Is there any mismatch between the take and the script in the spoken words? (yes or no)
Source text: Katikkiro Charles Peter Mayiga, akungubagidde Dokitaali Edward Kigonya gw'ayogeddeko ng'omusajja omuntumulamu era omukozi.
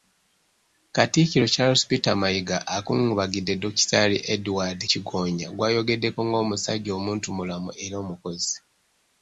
no